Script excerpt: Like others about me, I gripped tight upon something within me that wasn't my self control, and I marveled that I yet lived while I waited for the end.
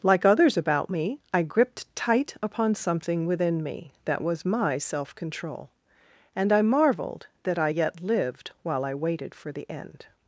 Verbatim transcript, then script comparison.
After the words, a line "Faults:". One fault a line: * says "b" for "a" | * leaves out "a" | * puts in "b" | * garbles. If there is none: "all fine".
Like others about me, I gripped tight upon something within me that was my self control, and I marveled that I yet lived while I waited for the end.
Faults:
* says "was" for "wasn't"